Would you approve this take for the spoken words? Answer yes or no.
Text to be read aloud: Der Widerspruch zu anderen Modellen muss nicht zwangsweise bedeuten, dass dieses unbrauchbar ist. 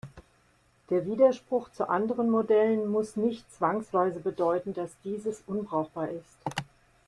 yes